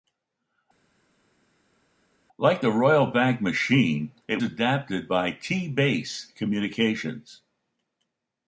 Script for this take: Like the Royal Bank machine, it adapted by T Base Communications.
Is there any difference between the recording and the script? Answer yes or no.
no